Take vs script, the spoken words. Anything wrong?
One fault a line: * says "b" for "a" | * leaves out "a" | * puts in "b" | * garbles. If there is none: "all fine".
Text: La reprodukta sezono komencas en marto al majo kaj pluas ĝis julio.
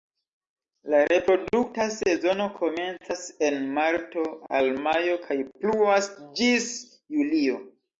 all fine